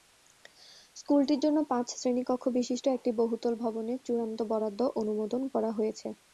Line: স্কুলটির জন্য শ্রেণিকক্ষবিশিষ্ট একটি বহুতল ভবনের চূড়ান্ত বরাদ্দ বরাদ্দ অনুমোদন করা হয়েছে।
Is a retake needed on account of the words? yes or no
yes